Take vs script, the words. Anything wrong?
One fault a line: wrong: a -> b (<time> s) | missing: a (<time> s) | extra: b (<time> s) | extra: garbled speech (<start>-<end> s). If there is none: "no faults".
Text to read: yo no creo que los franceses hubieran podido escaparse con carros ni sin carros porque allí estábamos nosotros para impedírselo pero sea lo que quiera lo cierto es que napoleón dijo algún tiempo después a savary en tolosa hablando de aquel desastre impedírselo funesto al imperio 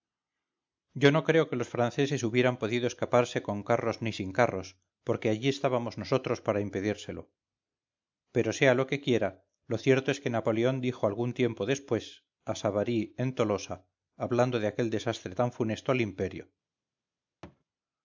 wrong: impedírselo -> tan (15.3 s)